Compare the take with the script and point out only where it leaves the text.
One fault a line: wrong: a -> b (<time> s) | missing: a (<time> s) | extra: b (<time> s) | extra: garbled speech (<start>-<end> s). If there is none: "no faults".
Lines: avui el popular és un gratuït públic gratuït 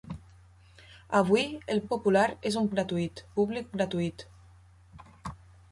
no faults